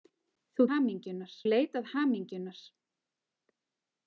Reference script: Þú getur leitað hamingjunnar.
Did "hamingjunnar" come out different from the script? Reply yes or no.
no